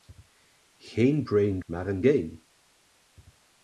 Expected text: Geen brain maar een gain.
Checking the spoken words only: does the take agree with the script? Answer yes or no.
yes